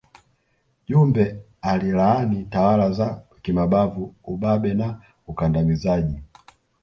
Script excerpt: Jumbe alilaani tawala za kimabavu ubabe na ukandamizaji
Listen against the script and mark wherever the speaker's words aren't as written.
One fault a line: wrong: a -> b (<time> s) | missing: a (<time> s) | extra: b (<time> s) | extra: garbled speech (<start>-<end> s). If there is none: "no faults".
no faults